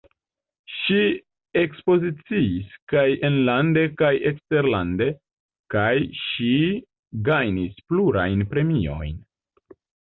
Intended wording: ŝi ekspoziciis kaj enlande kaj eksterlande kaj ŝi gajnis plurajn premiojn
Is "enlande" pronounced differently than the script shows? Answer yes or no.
no